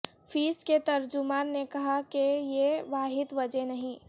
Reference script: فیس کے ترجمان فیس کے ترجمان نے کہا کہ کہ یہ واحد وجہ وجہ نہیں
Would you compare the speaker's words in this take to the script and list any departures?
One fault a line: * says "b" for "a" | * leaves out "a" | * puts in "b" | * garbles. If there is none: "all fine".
* leaves out "فیس کے ترجمان"
* leaves out "کہ"
* leaves out "وجہ"